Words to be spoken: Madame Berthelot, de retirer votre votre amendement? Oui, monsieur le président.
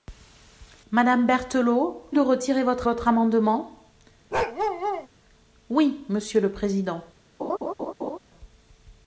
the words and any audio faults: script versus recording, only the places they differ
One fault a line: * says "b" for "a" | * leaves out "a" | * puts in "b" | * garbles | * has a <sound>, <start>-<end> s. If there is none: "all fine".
* has a bark, 4.3-5.1 s
* has a laugh, 7.4-8.2 s